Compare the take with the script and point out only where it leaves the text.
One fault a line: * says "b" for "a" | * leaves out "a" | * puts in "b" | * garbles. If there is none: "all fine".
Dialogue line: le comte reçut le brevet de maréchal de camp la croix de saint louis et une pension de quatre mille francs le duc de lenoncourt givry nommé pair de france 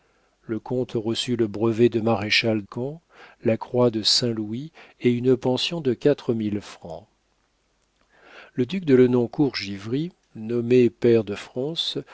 * leaves out "de"